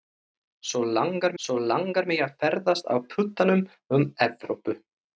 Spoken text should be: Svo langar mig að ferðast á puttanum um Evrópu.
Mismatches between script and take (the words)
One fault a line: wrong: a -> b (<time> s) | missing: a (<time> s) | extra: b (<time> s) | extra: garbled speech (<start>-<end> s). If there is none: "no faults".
extra: svo langar (1.4 s)